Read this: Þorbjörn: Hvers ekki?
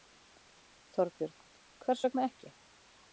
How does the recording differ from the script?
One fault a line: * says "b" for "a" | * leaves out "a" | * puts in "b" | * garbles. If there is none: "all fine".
* puts in "vegna"